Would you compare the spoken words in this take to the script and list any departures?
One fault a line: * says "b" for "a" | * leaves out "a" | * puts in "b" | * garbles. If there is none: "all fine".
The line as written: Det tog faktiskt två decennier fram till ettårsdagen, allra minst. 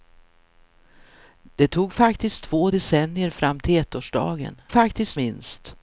* says "faktiskt" for "allra"